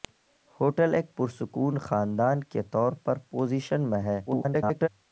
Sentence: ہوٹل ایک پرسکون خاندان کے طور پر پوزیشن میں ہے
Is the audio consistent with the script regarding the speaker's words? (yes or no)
no